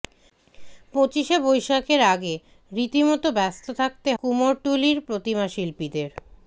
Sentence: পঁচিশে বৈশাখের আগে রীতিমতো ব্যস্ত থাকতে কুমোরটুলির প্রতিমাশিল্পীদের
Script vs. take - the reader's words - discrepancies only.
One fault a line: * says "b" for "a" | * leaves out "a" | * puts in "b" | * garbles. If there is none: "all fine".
all fine